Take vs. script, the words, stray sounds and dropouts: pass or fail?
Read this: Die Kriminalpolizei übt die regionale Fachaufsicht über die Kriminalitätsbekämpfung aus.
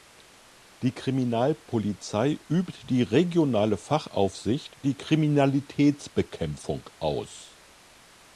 fail